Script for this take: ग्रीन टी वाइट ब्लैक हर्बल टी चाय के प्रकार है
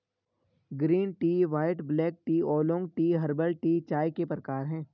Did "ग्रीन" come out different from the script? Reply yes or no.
no